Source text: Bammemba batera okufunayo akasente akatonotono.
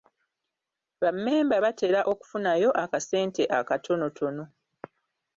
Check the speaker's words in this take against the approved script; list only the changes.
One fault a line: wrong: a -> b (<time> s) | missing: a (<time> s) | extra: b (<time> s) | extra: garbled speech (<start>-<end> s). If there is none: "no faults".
no faults